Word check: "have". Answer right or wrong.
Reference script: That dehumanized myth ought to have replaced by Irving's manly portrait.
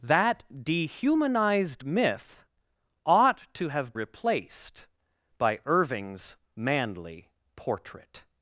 right